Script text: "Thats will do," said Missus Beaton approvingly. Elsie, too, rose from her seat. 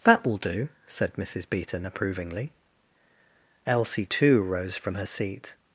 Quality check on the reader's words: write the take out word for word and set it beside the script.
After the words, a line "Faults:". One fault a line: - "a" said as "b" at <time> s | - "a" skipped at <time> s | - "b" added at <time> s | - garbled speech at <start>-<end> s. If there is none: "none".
"That will do," said Missus Beaton approvingly. Elsie, too, rose from her seat.
Faults:
- "Thats" said as "That" at 0.0 s